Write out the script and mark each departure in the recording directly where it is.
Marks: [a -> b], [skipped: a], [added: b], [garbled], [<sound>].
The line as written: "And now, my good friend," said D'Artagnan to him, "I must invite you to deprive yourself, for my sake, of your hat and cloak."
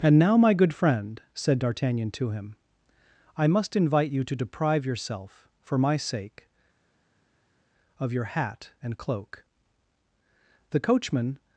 "And now, my good friend," said D'Artagnan to him, "I must invite you to deprive yourself, for my sake, of your hat and cloak." [added: The coachman]